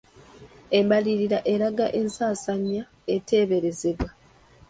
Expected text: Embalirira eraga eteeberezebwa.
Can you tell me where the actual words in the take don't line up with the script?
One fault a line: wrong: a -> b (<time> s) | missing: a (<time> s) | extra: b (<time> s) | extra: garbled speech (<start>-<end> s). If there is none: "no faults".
extra: ensaasaanya (2.0 s)